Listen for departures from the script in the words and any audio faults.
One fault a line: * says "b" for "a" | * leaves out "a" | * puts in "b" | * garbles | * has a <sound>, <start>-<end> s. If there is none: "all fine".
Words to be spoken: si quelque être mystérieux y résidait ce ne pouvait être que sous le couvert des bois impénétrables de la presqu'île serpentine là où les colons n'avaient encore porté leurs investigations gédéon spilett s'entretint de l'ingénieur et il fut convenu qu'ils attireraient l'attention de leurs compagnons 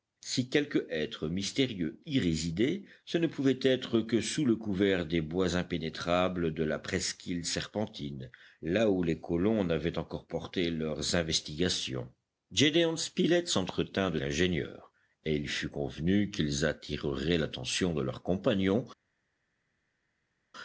all fine